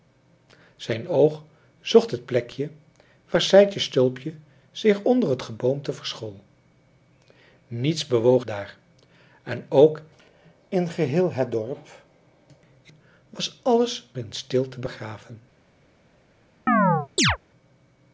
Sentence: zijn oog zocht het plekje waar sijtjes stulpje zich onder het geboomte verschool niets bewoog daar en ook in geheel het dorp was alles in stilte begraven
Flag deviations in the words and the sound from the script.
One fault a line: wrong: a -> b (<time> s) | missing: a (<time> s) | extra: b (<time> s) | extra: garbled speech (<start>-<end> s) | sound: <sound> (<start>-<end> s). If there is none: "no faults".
sound: chirp (16.7-17.4 s)